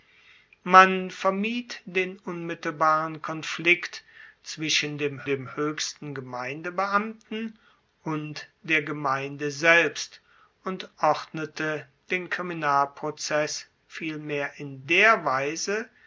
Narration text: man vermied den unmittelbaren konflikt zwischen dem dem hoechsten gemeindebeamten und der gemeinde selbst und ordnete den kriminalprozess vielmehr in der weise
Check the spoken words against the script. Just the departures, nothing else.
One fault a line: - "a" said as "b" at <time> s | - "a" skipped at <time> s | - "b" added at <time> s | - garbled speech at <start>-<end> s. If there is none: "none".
none